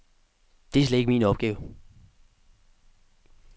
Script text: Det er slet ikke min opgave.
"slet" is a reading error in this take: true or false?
false